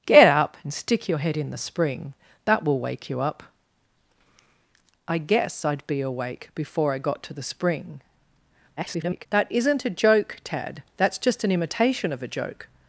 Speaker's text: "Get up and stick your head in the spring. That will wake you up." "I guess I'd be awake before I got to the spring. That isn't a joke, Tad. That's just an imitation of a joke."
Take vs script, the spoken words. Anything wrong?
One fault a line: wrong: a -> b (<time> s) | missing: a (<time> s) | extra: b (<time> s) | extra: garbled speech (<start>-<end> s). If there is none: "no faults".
extra: garbled speech (8.8-9.3 s)